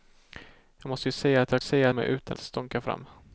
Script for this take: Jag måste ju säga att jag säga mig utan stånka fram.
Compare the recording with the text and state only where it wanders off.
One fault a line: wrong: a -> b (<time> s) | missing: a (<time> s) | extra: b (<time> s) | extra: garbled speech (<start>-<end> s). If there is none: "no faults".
no faults